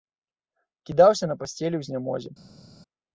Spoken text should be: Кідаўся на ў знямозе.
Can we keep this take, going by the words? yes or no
no